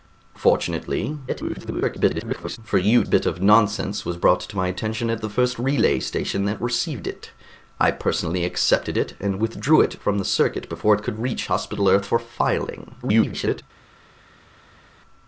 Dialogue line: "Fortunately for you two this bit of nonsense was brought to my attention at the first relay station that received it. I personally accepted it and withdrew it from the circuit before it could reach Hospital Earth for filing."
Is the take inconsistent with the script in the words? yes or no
yes